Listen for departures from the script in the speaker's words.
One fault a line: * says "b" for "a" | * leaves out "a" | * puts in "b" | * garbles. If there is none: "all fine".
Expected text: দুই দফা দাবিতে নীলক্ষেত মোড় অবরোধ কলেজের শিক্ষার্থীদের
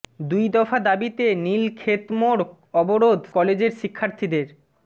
all fine